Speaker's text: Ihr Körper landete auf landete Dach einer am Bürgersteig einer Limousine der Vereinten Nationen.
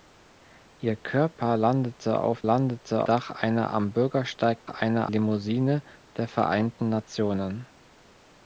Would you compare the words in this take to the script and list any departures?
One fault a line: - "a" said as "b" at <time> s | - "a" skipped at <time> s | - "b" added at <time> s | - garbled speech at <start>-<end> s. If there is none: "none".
none